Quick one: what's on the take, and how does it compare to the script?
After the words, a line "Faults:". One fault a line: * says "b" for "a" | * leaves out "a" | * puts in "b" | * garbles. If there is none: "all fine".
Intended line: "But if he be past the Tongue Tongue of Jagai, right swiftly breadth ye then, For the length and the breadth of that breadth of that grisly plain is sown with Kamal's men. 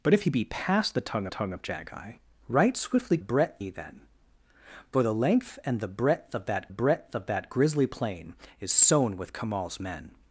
"But if he be past the Tongue Tongue of Jagai, right swiftly breadth ye then, For the length and the breadth of that breadth of that grisly plain is sown with Kamal's men.
Faults:
all fine